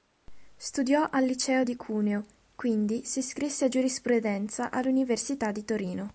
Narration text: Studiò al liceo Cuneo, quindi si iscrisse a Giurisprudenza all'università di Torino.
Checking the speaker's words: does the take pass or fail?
fail